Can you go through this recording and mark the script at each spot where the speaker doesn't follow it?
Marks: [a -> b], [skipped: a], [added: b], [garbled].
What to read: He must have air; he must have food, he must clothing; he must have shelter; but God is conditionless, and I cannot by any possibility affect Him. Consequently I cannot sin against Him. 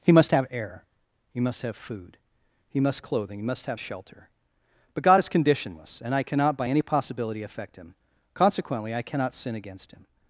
He must have air; he must have food, he must clothing; he must have shelter; but God is conditionless, and I cannot by any possibility affect Him. Consequently I cannot sin against Him.